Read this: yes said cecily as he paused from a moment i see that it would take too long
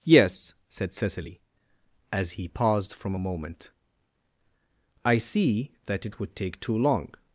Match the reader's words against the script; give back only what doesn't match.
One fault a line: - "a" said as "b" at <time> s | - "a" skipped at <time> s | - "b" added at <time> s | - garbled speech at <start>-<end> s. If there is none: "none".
none